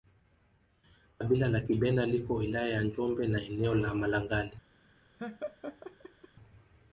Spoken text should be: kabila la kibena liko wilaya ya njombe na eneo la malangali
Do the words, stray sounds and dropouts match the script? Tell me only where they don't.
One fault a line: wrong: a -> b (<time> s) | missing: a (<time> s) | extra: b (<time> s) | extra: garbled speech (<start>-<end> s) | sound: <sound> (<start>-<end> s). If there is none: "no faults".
sound: laugh (5.2-6.3 s)